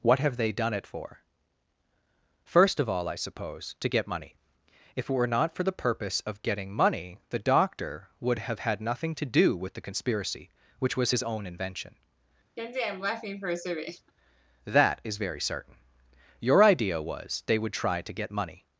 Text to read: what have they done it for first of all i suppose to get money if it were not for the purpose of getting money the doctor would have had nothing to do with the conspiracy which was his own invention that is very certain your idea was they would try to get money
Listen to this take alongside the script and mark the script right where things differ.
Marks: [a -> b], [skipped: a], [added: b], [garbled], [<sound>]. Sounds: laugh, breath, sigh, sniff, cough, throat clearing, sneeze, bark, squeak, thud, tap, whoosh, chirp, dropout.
what have they done it for first of all i suppose to get money if it were not for the purpose of getting money the doctor would have had nothing to do with the conspiracy which was his own invention [laugh] that is very certain your idea was they would try to get money